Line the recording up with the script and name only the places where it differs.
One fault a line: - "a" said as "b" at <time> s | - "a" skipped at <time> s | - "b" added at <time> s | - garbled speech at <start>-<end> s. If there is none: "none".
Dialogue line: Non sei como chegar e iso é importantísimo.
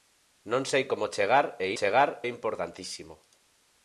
- "iso" said as "chegar" at 1.8 s